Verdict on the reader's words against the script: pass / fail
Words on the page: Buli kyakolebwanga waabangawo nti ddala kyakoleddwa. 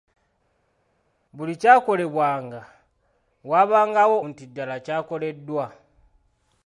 pass